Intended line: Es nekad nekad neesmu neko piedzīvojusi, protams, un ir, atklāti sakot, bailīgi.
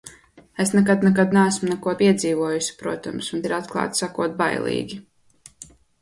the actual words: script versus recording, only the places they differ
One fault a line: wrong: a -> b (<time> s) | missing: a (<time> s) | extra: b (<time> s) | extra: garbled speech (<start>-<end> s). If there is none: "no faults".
no faults